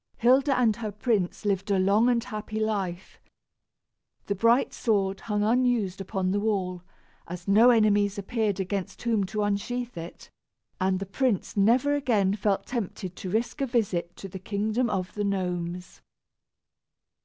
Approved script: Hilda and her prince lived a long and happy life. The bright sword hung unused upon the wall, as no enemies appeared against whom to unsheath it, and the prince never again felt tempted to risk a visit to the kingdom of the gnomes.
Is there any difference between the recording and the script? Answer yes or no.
no